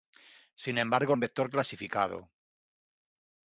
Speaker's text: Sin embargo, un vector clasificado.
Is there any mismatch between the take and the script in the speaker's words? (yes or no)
no